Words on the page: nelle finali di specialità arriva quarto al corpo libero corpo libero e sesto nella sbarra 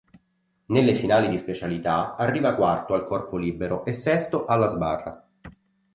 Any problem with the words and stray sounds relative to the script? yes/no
yes